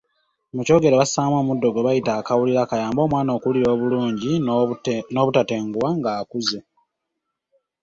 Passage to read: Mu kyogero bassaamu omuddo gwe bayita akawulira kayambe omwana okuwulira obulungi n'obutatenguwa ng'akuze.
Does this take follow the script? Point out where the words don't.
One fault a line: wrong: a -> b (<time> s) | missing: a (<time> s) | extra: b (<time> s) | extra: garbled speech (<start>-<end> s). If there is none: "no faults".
no faults